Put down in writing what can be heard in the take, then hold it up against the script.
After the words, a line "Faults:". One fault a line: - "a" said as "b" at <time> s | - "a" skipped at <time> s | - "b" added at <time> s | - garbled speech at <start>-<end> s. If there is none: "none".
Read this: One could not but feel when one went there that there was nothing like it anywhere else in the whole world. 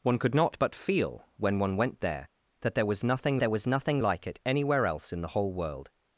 One could not but feel when one went there that there was nothing there was nothing like it anywhere else in the whole world.
Faults:
- "there was nothing" added at 3.4 s